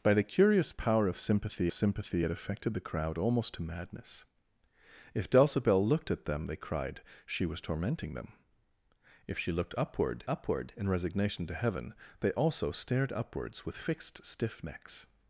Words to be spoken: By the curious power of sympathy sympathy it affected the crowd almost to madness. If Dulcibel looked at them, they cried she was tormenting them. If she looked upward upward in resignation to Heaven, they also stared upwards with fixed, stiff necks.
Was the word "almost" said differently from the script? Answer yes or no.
no